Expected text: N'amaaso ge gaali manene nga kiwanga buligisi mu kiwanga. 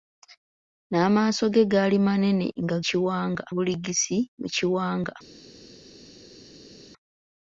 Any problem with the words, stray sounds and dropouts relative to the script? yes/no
no